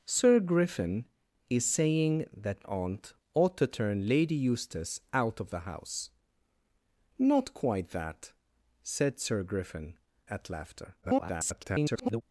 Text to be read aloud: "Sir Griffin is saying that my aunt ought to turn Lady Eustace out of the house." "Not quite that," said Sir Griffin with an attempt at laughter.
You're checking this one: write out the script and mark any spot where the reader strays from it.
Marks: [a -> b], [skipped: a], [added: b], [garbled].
"Sir Griffin is saying that [skipped: my] aunt ought to turn Lady Eustace out of the house." "Not quite that," said Sir Griffin [skipped: with an attempt] at laughter. [garbled]